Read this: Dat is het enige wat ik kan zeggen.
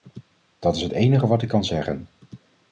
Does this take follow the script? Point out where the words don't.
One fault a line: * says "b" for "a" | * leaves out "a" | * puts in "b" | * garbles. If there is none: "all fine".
all fine